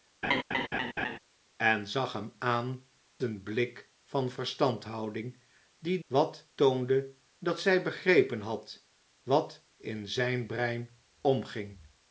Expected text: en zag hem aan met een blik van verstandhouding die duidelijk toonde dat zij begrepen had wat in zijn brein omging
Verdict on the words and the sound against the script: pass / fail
fail